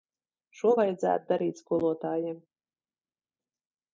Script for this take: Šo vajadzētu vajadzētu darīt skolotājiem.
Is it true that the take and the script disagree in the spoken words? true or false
true